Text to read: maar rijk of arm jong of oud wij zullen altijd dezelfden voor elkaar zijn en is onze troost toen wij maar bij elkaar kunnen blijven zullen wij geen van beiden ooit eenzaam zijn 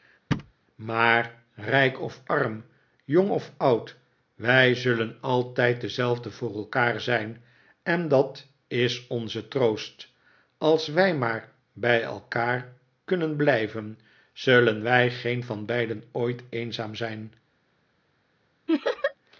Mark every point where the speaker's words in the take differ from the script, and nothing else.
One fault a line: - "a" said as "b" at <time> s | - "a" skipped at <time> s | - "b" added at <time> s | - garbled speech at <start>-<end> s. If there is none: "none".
- "dat" added at 8.1 s
- "toen" said as "als" at 10.6 s